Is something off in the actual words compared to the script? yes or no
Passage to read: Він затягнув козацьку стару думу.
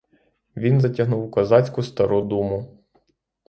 no